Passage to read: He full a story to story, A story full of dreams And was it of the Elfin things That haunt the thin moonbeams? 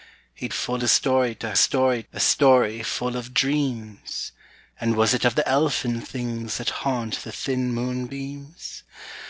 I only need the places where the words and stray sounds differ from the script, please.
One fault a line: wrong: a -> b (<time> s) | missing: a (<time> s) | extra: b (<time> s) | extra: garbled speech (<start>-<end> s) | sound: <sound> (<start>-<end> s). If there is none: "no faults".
no faults